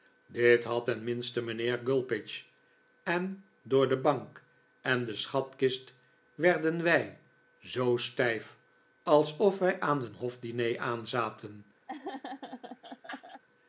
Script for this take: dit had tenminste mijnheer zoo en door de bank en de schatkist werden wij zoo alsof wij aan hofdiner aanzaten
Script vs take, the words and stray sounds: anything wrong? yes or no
yes